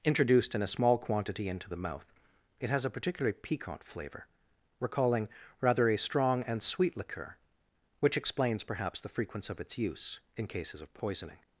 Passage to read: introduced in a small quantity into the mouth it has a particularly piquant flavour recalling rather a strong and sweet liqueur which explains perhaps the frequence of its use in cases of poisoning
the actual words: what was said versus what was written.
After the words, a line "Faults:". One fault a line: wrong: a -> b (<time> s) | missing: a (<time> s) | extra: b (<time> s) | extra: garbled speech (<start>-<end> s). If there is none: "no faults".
introduced in a small quantity into the mouth it has a particularly piquant flavour recalling rather a strong and sweet liqueur which explains perhaps the frequence of its use in cases of poisoning
Faults:
no faults